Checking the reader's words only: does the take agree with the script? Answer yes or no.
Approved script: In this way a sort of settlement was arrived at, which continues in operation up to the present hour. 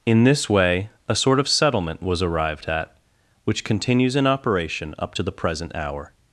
yes